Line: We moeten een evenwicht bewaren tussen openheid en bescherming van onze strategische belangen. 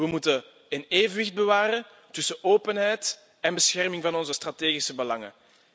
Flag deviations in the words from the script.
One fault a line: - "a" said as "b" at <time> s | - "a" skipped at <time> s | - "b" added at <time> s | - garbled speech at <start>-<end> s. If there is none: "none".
none